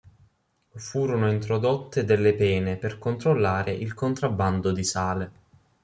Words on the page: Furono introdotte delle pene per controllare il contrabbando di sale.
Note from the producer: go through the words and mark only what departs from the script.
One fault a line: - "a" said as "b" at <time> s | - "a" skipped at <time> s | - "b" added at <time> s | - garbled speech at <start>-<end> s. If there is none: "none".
none